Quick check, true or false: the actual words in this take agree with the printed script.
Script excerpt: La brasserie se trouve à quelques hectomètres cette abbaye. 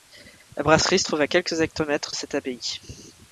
true